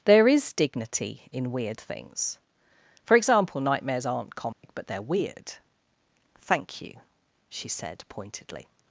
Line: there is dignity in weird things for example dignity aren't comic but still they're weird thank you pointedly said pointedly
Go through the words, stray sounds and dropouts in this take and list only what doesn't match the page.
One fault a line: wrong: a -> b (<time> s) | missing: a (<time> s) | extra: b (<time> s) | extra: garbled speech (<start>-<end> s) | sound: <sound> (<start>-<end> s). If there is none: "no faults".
wrong: dignity -> nightmares (3.6 s)
sound: dropout (4.5-4.6 s)
missing: still (4.9 s)
wrong: pointedly -> she (7.5 s)